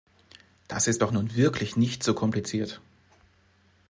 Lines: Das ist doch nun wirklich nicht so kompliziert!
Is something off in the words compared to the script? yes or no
no